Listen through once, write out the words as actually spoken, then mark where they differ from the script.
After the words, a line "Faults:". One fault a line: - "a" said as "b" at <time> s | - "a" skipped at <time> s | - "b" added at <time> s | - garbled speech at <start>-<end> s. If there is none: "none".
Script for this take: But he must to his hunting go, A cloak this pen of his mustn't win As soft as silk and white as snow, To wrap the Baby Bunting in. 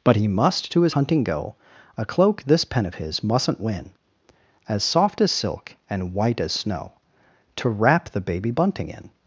But he must to his hunting go, A cloak this pen of his mustn't win As soft as silk and white as snow, To wrap the Baby Bunting in.
Faults:
none